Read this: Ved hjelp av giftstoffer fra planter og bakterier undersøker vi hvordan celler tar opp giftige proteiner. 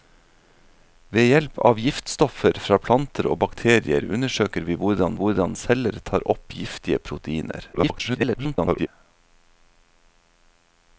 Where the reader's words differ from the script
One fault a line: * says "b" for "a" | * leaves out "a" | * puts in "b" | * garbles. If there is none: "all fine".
* puts in "hvordan"
* garbles